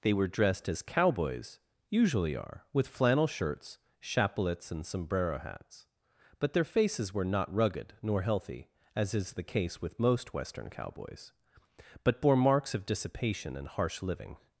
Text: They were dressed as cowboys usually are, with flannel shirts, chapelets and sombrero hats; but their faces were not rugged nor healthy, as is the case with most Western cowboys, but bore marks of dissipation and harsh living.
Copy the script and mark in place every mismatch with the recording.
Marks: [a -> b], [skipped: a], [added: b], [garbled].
They were dressed as cowboys usually are, with flannel shirts, chapelets and sombrero hats; but their faces were not rugged nor healthy, as is the case with most Western cowboys, but bore marks of dissipation and harsh living.